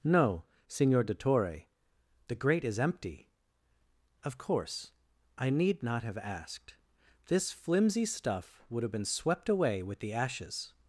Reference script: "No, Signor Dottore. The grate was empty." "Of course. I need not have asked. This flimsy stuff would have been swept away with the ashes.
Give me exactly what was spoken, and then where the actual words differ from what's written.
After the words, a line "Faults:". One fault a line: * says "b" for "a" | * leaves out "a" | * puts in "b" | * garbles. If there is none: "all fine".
"No, Signor Dottore. The grate is empty." "Of course. I need not have asked. This flimsy stuff would have been swept away with the ashes.
Faults:
* says "is" for "was"